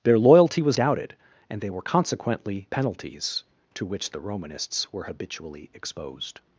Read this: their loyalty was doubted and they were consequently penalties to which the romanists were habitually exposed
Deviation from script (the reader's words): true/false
false